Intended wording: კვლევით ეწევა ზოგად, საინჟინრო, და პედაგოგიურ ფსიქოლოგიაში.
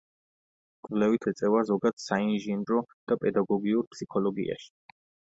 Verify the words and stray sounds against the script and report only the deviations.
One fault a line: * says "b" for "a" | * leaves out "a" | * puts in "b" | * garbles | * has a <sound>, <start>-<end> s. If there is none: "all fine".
all fine